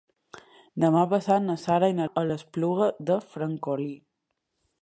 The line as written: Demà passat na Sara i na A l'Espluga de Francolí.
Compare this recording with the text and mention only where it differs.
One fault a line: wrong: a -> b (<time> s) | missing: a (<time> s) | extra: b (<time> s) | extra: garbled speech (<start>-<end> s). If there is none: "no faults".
no faults